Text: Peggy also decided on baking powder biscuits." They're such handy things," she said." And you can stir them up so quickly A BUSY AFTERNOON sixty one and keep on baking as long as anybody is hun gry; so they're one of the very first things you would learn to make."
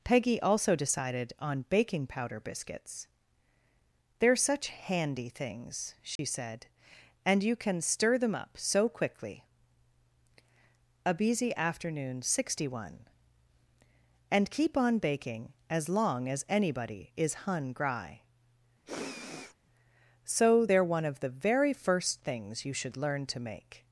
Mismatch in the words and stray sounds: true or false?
true